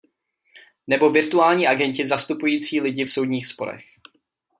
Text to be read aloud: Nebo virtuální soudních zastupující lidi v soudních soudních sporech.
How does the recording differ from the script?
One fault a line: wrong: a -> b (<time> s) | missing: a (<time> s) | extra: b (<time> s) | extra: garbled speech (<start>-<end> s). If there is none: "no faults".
wrong: soudních -> agenti (1.7 s)
missing: soudních (3.5 s)